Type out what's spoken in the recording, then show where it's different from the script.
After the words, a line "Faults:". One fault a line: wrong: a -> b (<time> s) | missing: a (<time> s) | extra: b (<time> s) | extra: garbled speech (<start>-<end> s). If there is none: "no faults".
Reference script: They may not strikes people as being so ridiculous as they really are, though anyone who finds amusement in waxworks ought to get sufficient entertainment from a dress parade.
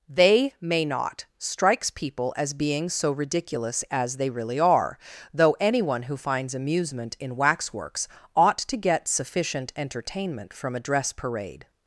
They may not strikes people as being so ridiculous as they really are, though anyone who finds amusement in waxworks ought to get sufficient entertainment from a dress parade.
Faults:
no faults